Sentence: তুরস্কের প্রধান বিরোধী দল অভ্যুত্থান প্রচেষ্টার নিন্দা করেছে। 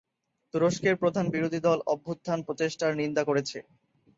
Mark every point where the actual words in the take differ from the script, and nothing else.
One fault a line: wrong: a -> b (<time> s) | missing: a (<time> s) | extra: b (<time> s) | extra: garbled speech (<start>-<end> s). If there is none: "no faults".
no faults